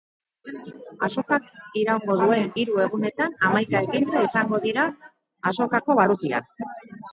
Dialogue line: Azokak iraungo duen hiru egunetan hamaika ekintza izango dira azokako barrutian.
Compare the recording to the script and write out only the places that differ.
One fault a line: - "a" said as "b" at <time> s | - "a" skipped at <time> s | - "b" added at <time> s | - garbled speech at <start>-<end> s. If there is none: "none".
none